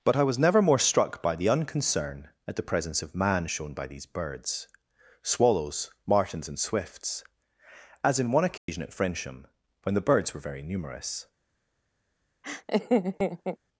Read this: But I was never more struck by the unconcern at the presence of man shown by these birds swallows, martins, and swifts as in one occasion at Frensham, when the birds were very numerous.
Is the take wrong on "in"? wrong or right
right